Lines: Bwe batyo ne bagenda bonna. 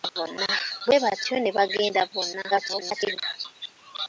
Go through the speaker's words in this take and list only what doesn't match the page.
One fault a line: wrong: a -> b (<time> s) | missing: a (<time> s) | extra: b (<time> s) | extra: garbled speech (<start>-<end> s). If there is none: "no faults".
extra: garbled speech (2.5-3.2 s)